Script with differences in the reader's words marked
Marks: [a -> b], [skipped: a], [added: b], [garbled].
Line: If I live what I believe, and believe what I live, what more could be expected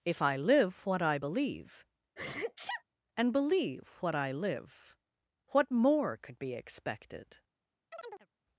If I live what I believe, and believe what I live, what more could be expected